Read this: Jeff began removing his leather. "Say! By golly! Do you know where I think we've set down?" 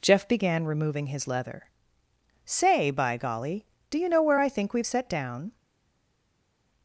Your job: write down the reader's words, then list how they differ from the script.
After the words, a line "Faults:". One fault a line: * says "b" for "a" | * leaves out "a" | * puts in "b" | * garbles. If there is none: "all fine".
Jeff began removing his leather. "Say! By golly! Do you know where I think we've set down?"
Faults:
all fine